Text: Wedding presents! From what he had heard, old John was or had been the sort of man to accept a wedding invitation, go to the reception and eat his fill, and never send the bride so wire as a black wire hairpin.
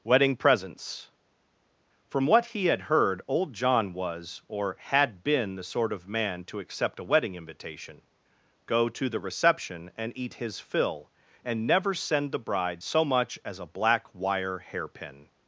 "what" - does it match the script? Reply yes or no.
yes